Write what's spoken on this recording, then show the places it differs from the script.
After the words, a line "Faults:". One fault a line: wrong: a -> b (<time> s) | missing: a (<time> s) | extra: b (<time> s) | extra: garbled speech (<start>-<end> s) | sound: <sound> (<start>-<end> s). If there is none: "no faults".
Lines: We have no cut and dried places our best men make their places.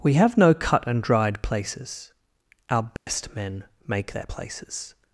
We have no cut and dried places our best men make their places.
Faults:
sound: dropout (3.0-3.1 s)